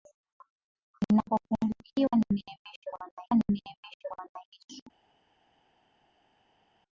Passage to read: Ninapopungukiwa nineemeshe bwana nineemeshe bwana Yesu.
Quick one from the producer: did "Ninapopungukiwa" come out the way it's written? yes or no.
yes